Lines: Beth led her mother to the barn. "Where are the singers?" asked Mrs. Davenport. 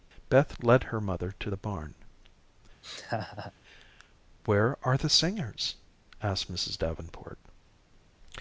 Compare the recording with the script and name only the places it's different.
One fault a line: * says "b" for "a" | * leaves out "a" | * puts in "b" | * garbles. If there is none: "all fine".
all fine